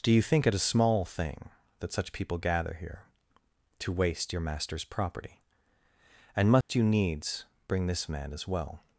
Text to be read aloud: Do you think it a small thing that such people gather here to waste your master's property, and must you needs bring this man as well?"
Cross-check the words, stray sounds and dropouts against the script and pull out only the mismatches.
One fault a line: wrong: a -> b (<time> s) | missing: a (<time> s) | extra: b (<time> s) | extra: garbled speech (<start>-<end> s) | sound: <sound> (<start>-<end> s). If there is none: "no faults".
sound: dropout (6.6-6.7 s)